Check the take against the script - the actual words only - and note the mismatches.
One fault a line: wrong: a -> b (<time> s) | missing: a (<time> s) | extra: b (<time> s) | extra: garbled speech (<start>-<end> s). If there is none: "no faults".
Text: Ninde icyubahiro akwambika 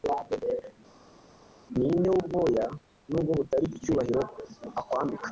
extra: wubwoya nubwo butari (2.1 s)